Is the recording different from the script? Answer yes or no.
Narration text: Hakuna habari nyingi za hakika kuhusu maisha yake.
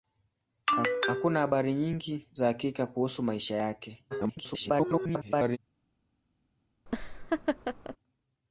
yes